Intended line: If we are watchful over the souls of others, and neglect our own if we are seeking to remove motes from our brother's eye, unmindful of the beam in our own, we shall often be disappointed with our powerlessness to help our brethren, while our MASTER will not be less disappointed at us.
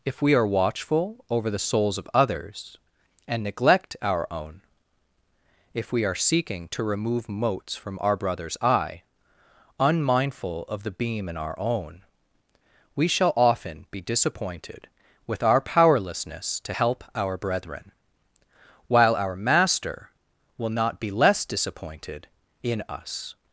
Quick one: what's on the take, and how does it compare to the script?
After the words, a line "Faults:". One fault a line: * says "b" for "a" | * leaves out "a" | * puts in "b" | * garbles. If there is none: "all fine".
If we are watchful over the souls of others, and neglect our own if we are seeking to remove motes from our brother's eye, unmindful of the beam in our own, we shall often be disappointed with our powerlessness to help our brethren, while our MASTER will not be less disappointed in us.
Faults:
* says "in" for "at"